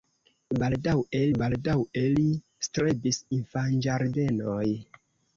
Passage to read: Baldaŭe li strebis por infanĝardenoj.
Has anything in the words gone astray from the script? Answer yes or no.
yes